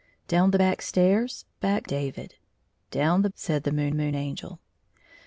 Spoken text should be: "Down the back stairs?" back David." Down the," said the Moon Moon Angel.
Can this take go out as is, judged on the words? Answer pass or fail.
pass